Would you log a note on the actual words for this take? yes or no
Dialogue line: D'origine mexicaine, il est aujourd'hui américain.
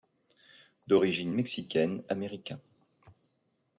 yes